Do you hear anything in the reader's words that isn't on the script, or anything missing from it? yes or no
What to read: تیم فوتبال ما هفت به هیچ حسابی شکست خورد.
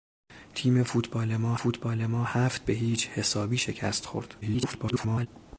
yes